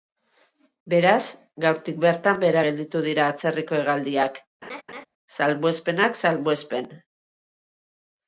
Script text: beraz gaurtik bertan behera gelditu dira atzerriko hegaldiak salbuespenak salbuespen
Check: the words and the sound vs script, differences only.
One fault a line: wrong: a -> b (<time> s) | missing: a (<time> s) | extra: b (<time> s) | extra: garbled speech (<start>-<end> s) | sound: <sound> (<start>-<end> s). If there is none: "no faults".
sound: laugh (4.6-5.1 s)